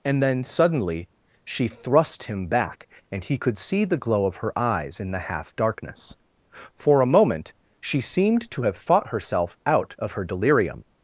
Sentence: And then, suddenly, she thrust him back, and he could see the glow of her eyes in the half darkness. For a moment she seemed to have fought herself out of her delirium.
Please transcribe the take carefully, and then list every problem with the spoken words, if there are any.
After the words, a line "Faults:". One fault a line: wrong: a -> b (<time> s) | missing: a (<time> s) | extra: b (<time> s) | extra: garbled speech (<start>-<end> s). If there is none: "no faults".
And then, suddenly, she thrust him back, and he could see the glow of her eyes in the half darkness. For a moment she seemed to have fought herself out of her delirium.
Faults:
no faults